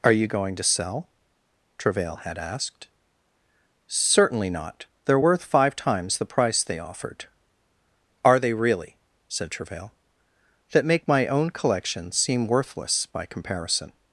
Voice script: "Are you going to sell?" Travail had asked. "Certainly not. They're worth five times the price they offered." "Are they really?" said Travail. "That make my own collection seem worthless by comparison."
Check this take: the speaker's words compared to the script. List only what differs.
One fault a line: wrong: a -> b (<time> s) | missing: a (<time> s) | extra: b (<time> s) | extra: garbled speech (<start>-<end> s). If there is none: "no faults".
no faults